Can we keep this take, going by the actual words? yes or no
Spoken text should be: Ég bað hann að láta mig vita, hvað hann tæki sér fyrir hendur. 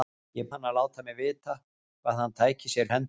no